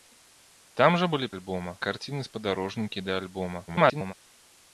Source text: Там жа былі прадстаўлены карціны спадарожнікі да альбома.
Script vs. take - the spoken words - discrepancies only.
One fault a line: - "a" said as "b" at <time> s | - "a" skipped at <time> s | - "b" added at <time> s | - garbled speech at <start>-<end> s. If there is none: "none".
- "прадстаўлены" said as "альбома" at 1.4 s
- garbled speech at 3.7-4.1 s